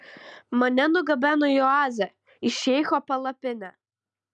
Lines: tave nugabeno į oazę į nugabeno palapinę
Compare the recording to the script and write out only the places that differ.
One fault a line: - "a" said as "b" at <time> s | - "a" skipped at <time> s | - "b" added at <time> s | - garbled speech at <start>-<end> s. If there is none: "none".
- "tave" said as "mane" at 0.6 s
- "nugabeno" said as "šeicho" at 2.6 s